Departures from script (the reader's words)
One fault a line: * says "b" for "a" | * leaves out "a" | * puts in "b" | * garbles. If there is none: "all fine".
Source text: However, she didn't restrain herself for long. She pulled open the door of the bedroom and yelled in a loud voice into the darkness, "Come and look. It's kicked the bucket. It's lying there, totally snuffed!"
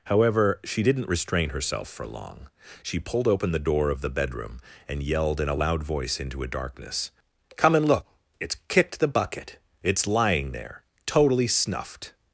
* says "a" for "the"